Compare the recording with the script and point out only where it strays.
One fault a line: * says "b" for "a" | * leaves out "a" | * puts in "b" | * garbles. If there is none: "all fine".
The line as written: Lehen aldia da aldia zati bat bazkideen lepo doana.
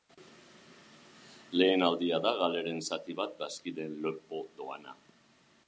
* says "galeren" for "aldia"